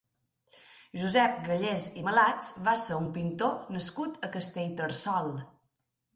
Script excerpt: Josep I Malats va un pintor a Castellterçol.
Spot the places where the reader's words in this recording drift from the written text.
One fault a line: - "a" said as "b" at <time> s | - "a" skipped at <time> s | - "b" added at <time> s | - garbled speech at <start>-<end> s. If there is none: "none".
- "Gallés" added at 1.5 s
- "ser" added at 2.8 s
- "nascut" added at 3.8 s